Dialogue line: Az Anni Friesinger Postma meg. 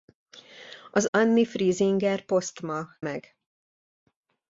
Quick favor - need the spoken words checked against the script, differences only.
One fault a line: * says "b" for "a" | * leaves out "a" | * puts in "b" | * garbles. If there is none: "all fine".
all fine